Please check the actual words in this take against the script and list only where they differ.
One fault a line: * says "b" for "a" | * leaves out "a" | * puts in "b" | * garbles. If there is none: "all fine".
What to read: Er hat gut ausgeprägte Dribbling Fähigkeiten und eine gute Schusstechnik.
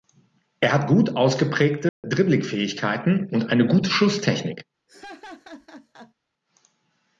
all fine